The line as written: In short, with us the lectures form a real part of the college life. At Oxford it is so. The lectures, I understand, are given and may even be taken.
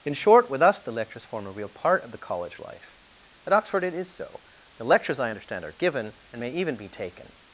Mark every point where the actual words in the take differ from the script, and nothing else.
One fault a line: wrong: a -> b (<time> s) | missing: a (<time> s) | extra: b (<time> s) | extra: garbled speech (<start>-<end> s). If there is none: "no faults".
no faults